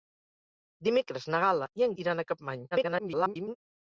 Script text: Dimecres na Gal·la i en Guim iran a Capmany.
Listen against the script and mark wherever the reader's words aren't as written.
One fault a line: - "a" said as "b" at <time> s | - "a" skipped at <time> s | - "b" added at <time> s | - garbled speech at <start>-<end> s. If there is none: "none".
- "Guim" skipped at 1.9 s
- garbled speech at 2.7-3.6 s